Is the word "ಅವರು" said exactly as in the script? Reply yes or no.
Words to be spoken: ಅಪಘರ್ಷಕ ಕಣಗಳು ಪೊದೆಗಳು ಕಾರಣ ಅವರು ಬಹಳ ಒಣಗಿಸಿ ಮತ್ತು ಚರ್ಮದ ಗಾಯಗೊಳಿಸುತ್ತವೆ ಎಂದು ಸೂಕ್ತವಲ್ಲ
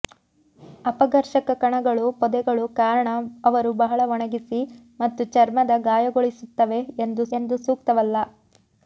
yes